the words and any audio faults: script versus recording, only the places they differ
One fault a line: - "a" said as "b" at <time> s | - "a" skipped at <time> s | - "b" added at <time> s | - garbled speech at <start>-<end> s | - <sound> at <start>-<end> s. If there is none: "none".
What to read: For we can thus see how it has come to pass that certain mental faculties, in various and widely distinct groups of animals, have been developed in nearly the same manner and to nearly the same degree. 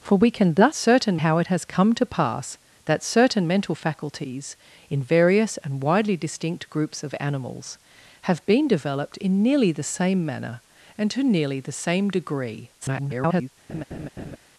- "see" said as "certain" at 0.7 s
- garbled speech at 12.8-13.5 s
- laugh at 13.7-14.4 s